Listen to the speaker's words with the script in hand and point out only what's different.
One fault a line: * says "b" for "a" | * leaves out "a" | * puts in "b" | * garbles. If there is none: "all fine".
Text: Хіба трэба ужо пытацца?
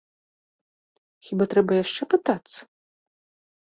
* says "яшчэ" for "ужо"